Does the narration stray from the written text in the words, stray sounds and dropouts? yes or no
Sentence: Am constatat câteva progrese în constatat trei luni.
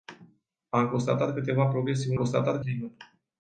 no